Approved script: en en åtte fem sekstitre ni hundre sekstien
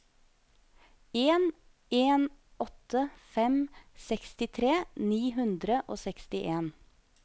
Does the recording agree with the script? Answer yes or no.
no